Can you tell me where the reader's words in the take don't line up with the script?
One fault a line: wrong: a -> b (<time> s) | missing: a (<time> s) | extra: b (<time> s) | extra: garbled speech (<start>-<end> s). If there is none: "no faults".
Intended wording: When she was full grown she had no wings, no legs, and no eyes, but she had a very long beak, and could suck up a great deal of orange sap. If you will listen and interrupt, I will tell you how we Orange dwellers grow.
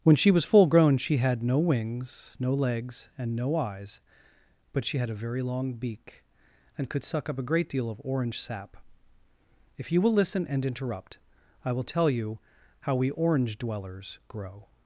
no faults